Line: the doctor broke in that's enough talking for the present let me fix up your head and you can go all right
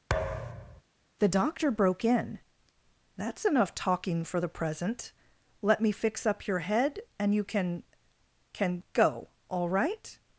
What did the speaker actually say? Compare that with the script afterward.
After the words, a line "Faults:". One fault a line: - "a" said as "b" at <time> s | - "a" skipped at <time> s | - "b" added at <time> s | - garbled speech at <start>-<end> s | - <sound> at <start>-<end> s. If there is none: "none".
the doctor broke in that's enough talking for the present let me fix up your head and you can can go all right
Faults:
- thud at 0.1-0.8 s
- "can" added at 8.5 s